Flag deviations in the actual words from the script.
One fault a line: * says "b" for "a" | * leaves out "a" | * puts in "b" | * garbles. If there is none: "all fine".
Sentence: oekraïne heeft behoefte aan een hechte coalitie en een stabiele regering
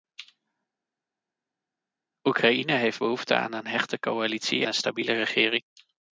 * leaves out "en"